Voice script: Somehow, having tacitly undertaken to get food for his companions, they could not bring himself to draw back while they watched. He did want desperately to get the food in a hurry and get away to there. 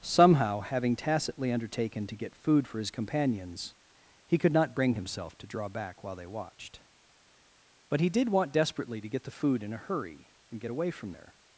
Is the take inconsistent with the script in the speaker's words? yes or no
yes